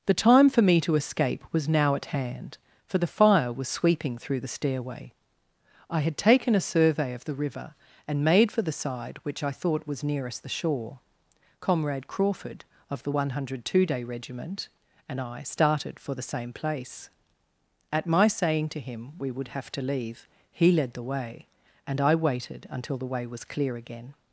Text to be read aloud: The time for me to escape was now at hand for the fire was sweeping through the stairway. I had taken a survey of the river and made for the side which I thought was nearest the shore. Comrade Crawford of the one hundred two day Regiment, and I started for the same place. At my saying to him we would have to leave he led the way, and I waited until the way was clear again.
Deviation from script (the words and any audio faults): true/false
false